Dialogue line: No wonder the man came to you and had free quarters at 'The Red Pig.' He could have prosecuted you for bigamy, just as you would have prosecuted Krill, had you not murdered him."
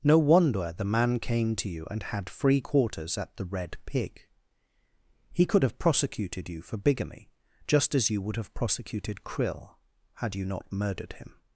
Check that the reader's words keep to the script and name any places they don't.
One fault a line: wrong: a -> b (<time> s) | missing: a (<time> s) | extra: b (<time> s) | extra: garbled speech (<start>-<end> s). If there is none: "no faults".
no faults